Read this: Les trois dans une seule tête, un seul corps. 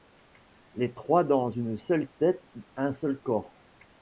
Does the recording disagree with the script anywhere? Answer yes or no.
no